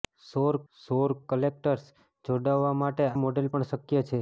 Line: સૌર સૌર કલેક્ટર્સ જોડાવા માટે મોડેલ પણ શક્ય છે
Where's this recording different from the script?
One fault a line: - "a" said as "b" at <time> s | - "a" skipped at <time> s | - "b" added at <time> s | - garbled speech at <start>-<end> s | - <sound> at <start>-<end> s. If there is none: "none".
none